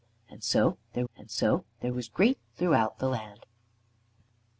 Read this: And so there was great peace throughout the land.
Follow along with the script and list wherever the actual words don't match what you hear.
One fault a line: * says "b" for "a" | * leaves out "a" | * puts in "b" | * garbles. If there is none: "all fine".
* puts in "and so there"
* leaves out "peace"